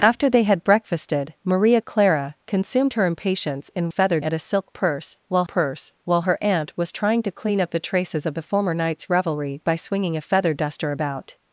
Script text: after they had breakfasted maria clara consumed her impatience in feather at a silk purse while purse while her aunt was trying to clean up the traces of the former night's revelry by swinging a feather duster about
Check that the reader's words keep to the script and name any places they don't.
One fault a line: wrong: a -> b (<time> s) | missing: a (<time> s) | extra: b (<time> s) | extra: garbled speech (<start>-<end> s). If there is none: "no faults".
no faults